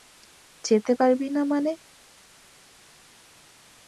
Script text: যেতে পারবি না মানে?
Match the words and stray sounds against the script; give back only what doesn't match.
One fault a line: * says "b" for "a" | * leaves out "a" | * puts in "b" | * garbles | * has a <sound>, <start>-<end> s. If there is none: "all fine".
all fine